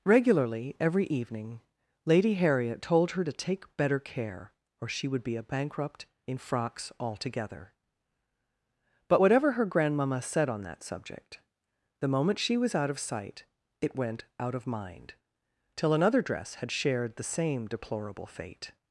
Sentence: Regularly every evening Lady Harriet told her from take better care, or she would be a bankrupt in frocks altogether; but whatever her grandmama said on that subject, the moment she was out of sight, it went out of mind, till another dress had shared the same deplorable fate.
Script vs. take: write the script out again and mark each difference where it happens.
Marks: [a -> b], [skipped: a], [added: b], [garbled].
Regularly every evening Lady Harriet told her [from -> to] take better care, or she would be a bankrupt in frocks altogether; but whatever her grandmama said on that subject, the moment she was out of sight, it went out of mind, till another dress had shared the same deplorable fate.